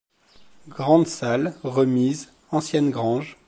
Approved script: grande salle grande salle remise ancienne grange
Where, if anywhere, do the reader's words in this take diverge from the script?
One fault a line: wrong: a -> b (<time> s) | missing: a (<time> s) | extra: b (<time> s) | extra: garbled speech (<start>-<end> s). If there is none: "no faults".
missing: grande salle (1.5 s)